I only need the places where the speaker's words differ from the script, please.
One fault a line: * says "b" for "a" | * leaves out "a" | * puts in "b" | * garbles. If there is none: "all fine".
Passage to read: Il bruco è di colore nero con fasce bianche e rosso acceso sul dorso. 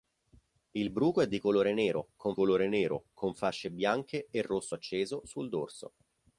* puts in "colore nero con"